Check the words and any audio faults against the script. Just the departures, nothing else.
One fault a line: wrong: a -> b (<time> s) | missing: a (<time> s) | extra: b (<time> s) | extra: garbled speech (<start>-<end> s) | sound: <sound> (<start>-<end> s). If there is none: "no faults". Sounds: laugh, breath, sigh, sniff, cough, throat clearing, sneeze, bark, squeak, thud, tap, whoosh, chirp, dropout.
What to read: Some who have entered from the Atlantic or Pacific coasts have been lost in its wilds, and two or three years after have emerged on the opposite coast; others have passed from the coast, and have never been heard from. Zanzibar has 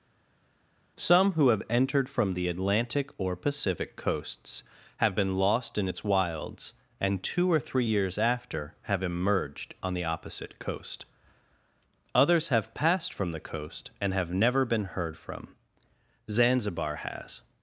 no faults